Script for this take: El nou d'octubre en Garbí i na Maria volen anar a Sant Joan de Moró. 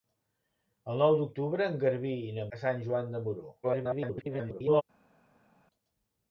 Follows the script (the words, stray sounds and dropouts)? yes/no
no